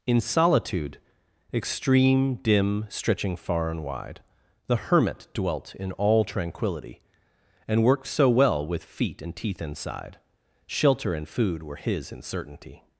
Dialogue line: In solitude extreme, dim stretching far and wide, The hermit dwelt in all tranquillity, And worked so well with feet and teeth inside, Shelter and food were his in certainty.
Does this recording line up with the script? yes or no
yes